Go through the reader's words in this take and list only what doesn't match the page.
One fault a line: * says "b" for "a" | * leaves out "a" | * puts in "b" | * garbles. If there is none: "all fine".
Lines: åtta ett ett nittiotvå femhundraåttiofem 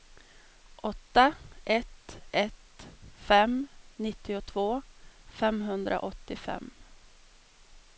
* puts in "fem"